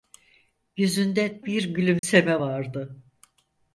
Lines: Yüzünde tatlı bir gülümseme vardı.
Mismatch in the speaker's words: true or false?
true